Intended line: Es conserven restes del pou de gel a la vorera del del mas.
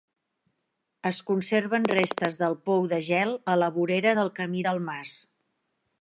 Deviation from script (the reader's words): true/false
true